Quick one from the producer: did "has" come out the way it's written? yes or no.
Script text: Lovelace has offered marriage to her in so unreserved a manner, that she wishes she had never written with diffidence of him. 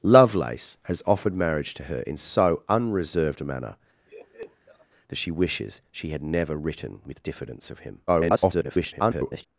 yes